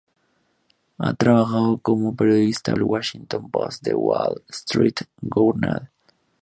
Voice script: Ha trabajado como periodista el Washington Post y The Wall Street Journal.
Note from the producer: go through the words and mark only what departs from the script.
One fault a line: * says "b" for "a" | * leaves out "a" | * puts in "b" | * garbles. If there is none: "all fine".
all fine